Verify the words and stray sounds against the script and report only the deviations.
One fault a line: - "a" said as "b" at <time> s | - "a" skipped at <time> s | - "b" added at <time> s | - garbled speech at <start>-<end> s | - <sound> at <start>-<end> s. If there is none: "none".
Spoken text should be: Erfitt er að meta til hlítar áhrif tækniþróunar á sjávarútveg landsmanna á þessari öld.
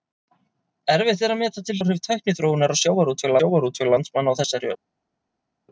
- "hlítar" skipped at 1.8 s
- "sjávarútveg" added at 3.4 s